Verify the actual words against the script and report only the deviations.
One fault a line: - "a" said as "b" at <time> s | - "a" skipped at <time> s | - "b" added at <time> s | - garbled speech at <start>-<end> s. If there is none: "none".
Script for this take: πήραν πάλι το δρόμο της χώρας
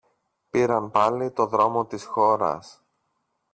none